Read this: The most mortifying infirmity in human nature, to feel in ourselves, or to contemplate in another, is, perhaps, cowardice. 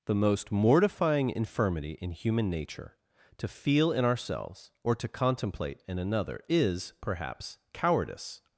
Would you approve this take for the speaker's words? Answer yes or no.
yes